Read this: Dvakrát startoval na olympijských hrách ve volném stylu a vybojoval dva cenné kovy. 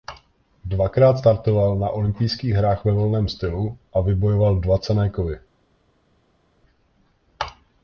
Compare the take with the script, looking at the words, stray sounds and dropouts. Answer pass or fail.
pass